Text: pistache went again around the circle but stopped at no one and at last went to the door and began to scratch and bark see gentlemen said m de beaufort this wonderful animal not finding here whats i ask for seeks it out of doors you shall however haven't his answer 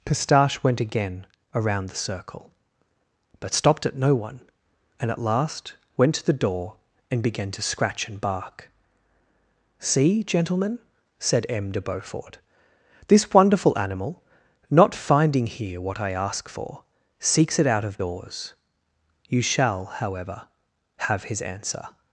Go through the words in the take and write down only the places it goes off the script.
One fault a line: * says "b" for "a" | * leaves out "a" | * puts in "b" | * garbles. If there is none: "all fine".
* says "what" for "whats"
* says "have" for "haven't"